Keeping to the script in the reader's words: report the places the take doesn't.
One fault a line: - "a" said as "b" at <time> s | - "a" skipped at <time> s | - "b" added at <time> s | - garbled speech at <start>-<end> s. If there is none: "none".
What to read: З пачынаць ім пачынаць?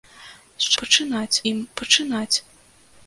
none